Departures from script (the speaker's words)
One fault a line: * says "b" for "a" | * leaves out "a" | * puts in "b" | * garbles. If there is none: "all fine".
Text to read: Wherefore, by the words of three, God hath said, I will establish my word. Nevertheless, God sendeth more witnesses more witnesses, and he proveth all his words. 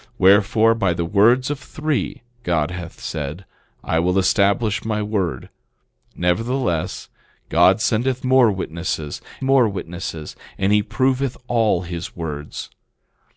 all fine